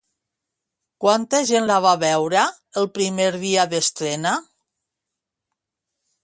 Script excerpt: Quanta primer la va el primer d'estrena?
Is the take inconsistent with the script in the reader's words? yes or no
yes